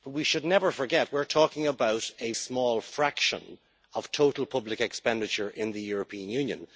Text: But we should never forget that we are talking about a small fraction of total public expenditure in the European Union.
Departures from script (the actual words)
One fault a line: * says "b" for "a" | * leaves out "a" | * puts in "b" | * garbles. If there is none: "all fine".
all fine